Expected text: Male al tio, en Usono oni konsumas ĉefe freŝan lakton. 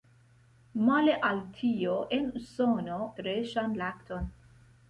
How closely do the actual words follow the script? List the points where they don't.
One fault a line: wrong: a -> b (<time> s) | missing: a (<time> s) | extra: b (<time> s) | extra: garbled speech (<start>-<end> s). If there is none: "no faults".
missing: oni konsumas ĉefe (3.0 s)